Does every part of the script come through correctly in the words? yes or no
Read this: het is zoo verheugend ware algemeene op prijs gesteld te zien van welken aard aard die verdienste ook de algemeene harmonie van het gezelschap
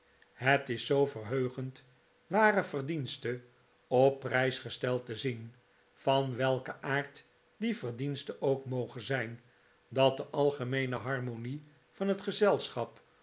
no